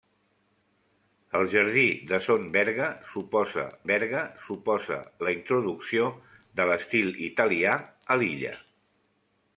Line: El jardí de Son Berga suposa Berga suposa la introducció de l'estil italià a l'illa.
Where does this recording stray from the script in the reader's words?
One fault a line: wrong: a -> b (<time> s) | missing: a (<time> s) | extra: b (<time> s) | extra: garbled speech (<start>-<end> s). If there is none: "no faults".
no faults